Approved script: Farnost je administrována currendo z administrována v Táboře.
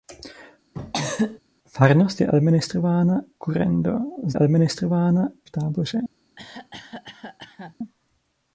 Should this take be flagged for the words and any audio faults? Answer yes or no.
yes